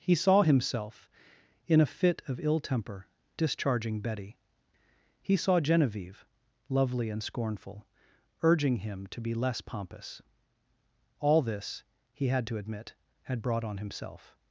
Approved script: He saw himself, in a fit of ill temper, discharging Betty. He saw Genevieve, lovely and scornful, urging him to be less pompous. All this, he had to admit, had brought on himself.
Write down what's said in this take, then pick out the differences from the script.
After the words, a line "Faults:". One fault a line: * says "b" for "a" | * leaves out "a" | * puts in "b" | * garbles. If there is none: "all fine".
He saw himself, in a fit of ill temper, discharging Betty. He saw Genevieve, lovely and scornful, urging him to be less pompous. All this, he had to admit, had brought on himself.
Faults:
all fine